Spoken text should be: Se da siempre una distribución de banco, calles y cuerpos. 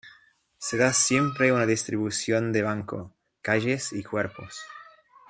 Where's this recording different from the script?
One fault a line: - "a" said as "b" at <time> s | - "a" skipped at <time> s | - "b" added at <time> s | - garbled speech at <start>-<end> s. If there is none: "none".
none